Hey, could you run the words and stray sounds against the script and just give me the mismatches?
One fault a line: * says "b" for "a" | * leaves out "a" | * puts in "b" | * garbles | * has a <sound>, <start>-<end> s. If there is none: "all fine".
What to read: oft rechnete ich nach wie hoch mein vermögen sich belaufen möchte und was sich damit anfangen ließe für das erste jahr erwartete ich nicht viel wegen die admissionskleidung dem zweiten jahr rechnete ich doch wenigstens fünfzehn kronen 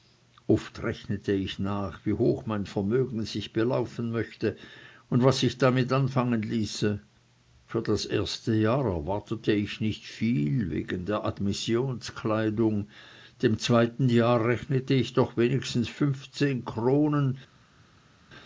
* says "der" for "die"